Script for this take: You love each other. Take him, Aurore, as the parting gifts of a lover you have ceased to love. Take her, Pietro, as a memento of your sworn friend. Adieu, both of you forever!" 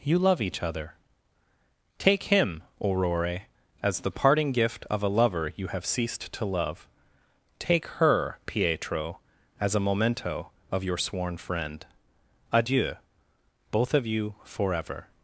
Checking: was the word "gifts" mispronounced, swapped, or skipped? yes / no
yes